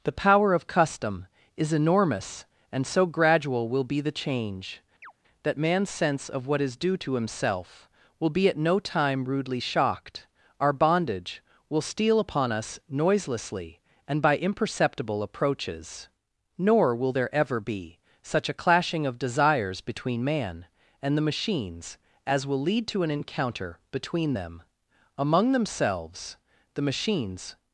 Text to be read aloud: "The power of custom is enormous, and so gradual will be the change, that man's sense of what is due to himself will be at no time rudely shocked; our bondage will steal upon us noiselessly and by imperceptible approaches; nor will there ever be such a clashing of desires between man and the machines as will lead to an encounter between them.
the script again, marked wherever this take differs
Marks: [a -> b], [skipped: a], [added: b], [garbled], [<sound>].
"The power of custom is enormous, and so gradual will be the change, [chirp] that man's sense of what is due to himself will be at no time rudely shocked; our bondage will steal upon us noiselessly and by imperceptible approaches; nor will there ever be such a clashing of desires between man and the machines as will lead to an encounter between them. [added: Among themselves the machines]